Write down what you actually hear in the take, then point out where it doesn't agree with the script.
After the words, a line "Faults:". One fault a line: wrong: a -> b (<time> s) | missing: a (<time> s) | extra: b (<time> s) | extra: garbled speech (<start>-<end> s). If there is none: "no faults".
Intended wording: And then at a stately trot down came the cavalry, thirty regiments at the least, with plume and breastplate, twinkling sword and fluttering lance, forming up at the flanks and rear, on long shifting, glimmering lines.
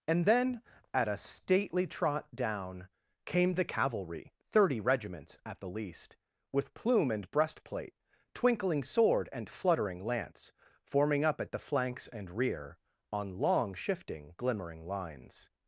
And then at a stately trot down came the cavalry, thirty regiments at the least, with plume and breastplate, twinkling sword and fluttering lance, forming up at the flanks and rear, on long shifting, glimmering lines.
Faults:
no faults